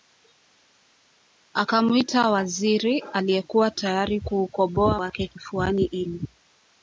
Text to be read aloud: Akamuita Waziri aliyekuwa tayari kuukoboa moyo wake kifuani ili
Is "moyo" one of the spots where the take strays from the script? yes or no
yes